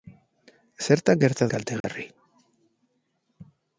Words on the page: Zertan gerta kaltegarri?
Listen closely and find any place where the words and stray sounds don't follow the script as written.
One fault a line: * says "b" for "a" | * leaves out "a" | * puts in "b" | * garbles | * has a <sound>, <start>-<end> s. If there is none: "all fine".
* has a dropout, 1.8-1.8 s